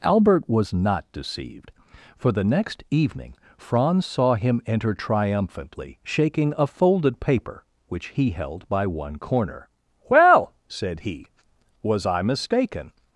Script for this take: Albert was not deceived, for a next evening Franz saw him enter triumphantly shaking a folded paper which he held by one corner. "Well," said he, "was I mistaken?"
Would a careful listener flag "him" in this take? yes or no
no